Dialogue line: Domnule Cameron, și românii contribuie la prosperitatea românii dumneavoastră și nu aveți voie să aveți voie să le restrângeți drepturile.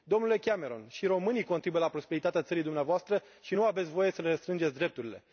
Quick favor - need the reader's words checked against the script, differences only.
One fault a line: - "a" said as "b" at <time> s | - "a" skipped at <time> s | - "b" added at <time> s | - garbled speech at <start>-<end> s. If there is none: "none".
- "românii" said as "țării" at 2.4 s
- "aveți voie să" skipped at 4.2 s